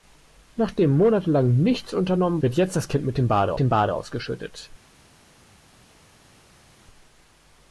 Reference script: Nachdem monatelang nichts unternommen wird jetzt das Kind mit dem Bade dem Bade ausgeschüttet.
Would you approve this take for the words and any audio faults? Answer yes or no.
yes